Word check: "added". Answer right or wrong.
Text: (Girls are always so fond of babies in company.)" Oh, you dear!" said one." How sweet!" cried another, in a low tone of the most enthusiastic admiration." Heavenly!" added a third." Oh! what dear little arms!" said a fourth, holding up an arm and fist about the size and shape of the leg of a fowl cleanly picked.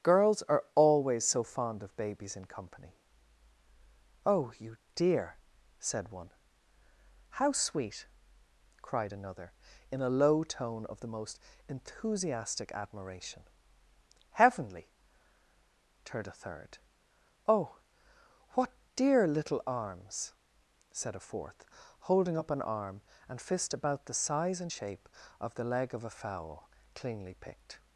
wrong